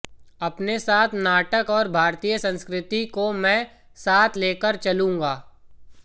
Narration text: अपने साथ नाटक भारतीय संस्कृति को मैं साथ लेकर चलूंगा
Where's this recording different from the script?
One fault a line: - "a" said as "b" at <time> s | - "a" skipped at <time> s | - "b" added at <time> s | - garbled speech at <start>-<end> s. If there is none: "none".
- "और" added at 1.7 s